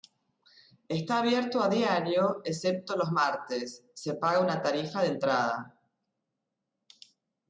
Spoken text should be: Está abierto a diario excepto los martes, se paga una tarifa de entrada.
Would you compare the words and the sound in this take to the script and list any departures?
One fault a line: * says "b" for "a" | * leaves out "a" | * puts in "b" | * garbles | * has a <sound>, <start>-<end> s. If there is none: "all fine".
all fine